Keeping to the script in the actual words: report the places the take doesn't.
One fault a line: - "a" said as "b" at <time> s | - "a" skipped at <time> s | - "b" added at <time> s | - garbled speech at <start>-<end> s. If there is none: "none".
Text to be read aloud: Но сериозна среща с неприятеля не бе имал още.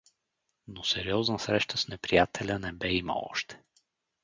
none